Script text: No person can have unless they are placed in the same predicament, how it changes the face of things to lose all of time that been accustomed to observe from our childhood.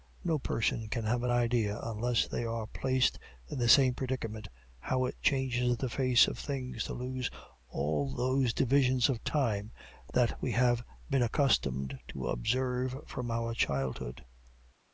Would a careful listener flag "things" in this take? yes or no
no